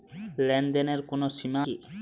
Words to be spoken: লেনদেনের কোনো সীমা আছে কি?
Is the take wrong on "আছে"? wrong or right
wrong